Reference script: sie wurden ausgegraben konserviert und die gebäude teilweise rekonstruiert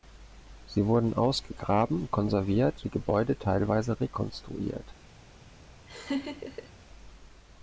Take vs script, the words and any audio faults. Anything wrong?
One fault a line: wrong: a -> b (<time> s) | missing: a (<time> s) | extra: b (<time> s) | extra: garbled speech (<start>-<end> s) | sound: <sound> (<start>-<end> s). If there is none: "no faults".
missing: und (2.9 s)
sound: laugh (5.9-6.7 s)